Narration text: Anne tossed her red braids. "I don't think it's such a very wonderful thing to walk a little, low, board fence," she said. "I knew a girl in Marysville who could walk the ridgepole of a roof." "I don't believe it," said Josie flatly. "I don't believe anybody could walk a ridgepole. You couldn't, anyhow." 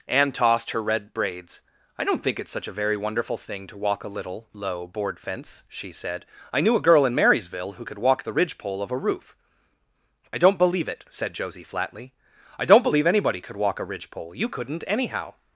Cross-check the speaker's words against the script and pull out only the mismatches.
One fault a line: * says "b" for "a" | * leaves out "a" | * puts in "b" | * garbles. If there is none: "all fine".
all fine